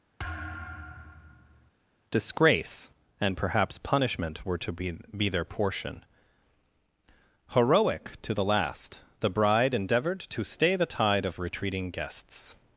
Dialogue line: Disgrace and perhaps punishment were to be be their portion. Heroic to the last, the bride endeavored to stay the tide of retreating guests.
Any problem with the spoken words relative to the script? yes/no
no